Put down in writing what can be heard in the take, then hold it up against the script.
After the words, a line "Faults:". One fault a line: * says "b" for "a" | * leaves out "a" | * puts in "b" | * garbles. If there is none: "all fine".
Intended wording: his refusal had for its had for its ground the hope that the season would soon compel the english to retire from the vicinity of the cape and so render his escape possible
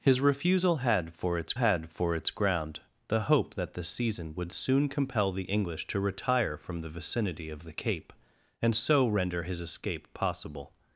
his refusal had for its had for its ground the hope that the season would soon compel the english to retire from the vicinity of the cape and so render his escape possible
Faults:
all fine